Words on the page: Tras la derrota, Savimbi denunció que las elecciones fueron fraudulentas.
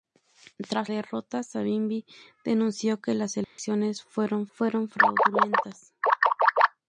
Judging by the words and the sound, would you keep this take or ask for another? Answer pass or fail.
fail